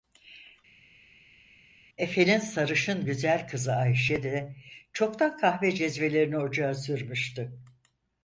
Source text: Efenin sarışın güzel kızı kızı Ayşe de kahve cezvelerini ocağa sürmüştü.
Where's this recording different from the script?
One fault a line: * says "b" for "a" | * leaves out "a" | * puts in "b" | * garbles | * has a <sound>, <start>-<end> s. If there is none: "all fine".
* leaves out "kızı"
* puts in "çoktan"